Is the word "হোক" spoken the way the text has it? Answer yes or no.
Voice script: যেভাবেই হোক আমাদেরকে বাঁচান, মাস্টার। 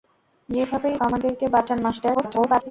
no